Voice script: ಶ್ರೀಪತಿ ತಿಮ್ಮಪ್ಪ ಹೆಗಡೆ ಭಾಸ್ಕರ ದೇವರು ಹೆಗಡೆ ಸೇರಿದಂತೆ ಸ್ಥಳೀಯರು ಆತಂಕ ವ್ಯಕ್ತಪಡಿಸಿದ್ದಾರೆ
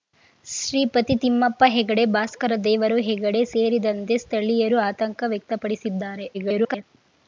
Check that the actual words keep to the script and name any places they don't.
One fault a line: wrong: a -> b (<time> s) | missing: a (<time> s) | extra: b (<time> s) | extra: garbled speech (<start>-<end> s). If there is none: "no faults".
extra: garbled speech (6.3-6.8 s)